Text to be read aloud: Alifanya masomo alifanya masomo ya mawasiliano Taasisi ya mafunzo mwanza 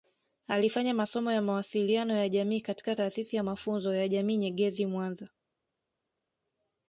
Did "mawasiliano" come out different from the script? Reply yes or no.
yes